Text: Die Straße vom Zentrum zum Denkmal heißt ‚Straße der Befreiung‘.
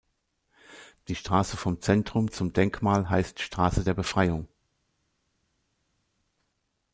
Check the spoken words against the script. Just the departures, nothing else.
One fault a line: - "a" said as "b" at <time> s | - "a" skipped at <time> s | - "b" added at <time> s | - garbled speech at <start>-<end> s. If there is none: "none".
none